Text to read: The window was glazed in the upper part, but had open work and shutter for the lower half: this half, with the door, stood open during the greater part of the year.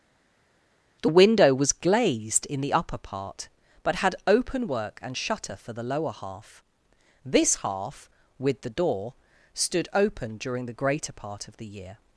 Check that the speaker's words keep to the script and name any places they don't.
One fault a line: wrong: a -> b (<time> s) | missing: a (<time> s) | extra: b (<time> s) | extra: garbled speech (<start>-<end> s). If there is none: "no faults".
no faults